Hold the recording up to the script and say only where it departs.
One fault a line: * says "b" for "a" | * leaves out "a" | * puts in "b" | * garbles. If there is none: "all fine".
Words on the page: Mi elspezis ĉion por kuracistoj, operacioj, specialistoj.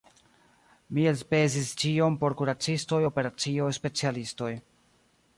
all fine